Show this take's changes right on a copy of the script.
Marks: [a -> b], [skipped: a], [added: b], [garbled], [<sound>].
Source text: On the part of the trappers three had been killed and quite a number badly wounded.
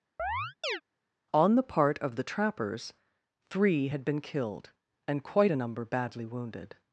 [chirp] On the part of the trappers three had been killed and quite a number badly wounded.